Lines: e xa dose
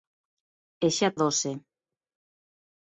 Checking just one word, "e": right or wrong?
right